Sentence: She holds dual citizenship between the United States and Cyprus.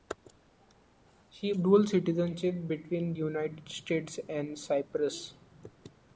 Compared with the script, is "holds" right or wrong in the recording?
wrong